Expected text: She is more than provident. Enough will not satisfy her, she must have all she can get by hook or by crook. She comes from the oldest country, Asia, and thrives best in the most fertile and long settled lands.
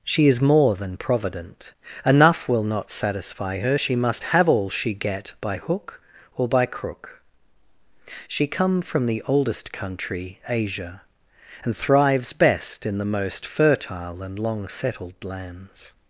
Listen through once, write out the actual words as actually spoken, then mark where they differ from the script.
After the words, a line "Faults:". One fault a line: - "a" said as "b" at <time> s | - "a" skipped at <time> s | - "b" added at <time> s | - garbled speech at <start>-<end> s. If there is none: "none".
She is more than provident. Enough will not satisfy her, she must have all she get by hook or by crook. She come from the oldest country, Asia, and thrives best in the most fertile and long settled lands.
Faults:
- "can" skipped at 4.9 s
- "comes" said as "come" at 8.5 s